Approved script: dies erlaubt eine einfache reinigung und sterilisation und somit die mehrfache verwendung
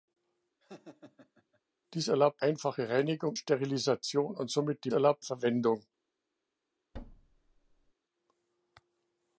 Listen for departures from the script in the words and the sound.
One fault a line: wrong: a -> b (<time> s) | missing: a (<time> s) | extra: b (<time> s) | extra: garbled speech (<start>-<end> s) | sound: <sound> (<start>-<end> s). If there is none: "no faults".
sound: laugh (0.6-1.6 s)
missing: eine (2.4 s)
missing: und (3.4 s)
wrong: mehrfache -> erlaubt (4.9 s)
sound: thud (6.9-7.9 s)